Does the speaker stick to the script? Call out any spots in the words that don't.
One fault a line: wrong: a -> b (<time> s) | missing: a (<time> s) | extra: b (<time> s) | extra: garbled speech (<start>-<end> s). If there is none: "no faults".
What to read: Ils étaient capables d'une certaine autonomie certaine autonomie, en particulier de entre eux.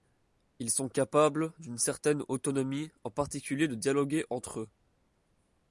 wrong: étaient -> sont (0.7 s)
missing: certaine autonomie (2.9 s)
extra: dialoguer (3.7 s)